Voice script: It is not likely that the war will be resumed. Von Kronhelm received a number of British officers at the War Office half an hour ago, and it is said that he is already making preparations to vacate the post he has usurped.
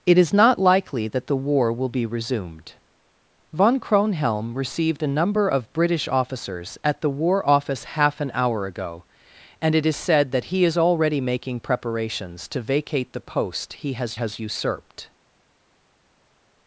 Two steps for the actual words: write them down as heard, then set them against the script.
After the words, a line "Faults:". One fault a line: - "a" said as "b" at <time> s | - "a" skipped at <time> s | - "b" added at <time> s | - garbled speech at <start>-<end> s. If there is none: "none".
It is not likely that the war will be resumed. Von Kronhelm received a number of British officers at the War Office half an hour ago, and it is said that he is already making preparations to vacate the post he has has usurped.
Faults:
- "has" added at 14.1 s